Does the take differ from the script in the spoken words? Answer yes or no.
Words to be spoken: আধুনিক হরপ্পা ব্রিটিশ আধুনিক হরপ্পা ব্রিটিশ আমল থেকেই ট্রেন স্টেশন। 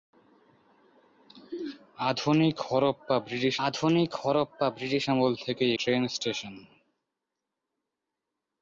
no